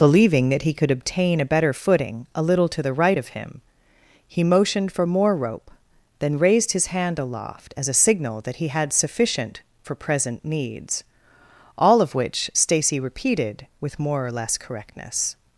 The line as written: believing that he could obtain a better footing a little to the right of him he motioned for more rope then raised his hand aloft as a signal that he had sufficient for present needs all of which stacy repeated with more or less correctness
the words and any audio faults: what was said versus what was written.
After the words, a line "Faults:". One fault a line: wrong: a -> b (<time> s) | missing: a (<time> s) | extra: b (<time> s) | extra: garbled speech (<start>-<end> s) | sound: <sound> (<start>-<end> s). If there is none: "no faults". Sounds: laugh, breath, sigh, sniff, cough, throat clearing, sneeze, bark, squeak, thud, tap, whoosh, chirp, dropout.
believing that he could obtain a better footing a little to the right of him he motioned for more rope then raised his hand aloft as a signal that he had sufficient for present needs all of which stacy repeated with more or less correctness
Faults:
no faults